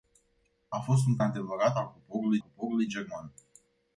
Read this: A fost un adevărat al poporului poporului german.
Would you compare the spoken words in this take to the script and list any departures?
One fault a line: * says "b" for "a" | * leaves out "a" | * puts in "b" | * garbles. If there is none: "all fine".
all fine